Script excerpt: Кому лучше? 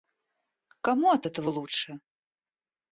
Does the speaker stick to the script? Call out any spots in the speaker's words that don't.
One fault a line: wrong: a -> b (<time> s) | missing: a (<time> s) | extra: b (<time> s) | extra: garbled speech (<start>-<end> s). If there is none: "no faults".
extra: от этого (1.1 s)